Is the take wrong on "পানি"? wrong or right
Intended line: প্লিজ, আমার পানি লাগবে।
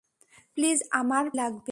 wrong